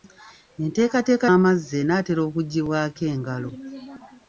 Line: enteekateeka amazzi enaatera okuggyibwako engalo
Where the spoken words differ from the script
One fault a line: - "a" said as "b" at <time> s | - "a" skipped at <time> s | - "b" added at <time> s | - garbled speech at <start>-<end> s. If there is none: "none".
none